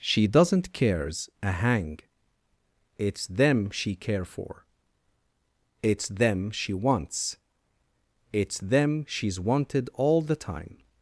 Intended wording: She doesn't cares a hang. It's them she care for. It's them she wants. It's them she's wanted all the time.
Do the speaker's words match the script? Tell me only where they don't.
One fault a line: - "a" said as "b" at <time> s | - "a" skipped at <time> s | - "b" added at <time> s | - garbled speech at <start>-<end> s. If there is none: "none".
none